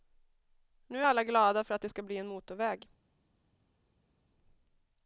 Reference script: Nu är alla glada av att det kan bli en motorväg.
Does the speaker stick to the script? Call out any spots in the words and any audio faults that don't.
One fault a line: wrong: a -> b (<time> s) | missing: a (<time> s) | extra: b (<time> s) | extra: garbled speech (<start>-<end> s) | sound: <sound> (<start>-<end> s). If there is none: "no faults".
wrong: av -> för (1.6 s)
wrong: kan -> ska (1.9 s)